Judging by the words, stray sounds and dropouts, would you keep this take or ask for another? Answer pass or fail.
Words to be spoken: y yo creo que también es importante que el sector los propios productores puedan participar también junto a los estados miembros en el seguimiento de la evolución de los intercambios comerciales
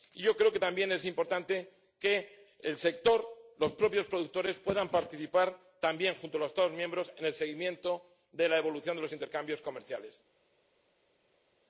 pass